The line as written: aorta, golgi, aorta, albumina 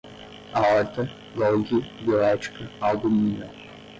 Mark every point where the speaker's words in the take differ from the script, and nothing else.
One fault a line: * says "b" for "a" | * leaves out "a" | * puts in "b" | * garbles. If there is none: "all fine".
* says "bioética" for "aorta"